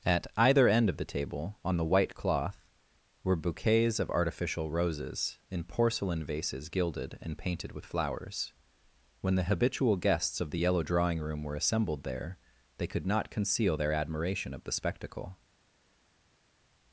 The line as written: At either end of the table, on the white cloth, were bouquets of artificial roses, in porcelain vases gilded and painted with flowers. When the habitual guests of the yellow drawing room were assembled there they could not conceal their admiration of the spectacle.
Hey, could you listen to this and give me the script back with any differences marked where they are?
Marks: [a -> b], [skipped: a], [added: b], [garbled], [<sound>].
At either end of the table, on the white cloth, were bouquets of artificial roses, in porcelain vases gilded and painted with flowers. When the habitual guests of the yellow drawing room were assembled there they could not conceal their admiration of the spectacle.